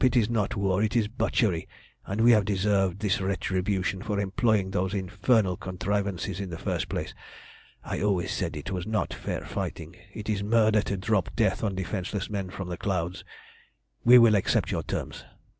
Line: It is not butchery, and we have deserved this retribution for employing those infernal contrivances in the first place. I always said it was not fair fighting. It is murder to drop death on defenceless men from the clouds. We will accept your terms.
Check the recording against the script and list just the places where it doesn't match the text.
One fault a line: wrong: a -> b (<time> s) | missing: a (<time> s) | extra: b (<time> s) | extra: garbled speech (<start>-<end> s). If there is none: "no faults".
extra: war it is (0.6 s)